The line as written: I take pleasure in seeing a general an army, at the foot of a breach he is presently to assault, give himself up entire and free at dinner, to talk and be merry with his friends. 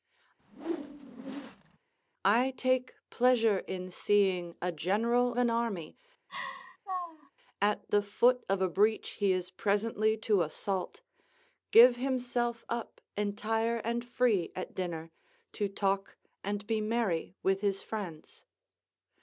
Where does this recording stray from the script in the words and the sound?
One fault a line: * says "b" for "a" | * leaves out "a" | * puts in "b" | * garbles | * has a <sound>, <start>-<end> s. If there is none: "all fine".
* has a whoosh, 0.4-1.8 s
* has a laugh, 6.3-7.3 s